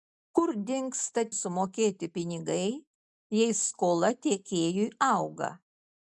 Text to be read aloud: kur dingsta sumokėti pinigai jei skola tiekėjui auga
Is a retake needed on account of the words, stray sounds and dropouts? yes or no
no